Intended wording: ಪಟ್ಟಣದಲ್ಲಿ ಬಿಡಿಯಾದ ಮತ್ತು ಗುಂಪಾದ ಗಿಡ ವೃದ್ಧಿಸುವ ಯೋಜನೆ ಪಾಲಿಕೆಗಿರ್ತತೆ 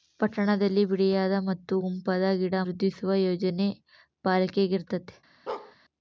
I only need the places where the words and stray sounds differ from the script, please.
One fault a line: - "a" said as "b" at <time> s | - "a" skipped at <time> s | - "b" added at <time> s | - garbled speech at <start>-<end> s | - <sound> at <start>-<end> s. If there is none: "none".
- bark at 5.5-5.8 s